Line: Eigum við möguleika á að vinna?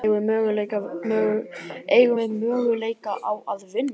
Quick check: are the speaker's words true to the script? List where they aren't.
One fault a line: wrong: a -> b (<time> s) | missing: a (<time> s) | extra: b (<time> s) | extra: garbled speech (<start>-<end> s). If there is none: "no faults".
no faults